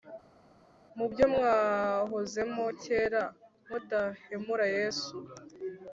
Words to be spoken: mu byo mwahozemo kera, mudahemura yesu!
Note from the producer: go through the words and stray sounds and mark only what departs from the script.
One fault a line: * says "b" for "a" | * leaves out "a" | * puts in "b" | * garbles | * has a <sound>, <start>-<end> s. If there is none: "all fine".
all fine